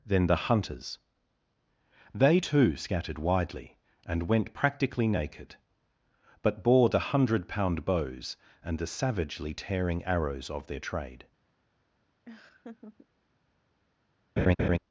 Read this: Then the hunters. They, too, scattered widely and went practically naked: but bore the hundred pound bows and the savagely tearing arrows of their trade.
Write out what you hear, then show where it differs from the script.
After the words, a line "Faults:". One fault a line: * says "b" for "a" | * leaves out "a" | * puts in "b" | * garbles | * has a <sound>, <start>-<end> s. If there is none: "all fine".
Then the hunters. They, too, scattered widely and went practically naked: but bore the hundred pound bows and the savagely tearing arrows of their trade.
Faults:
* has a laugh, 12.3-13.1 s
* has a laugh, 14.4-14.8 s